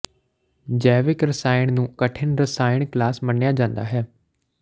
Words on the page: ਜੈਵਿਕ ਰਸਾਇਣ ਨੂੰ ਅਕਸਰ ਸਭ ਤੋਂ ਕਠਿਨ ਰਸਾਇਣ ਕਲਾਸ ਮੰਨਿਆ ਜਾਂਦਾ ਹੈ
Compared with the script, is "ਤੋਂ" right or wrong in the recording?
wrong